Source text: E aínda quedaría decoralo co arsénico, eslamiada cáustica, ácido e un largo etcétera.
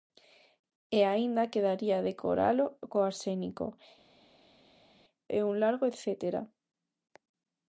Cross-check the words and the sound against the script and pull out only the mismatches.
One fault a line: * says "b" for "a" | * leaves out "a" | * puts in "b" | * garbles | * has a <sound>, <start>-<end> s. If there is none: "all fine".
* leaves out "eslamiada cáustica ácido"